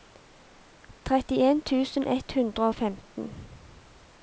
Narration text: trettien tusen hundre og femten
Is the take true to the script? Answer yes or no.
no